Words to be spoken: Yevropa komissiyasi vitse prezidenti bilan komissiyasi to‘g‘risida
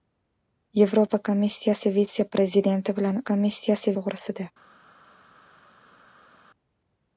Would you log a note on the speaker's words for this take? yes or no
no